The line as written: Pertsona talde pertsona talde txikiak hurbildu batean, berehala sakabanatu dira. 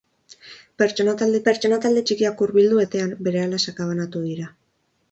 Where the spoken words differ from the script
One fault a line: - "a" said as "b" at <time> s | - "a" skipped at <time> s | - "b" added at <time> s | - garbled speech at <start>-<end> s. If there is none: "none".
none